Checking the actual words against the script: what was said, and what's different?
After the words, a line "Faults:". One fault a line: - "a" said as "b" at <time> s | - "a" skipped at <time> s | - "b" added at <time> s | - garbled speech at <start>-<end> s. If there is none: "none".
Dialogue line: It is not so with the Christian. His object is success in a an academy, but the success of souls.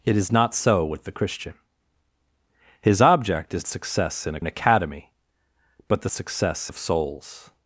It is not so with the Christian. His object is success in a an academy, but the success of souls.
Faults:
none